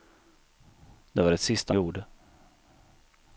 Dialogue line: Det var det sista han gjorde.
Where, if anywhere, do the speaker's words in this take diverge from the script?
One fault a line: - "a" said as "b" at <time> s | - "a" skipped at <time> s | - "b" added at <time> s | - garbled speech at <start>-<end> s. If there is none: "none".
- "han" skipped at 1.7 s